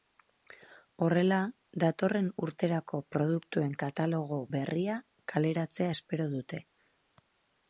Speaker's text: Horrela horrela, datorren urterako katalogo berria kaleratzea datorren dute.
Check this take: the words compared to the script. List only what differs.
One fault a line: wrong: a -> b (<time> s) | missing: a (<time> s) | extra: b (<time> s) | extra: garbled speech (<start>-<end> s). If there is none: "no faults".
missing: horrela (1.4 s)
extra: produktuen (3.1 s)
wrong: datorren -> espero (6.0 s)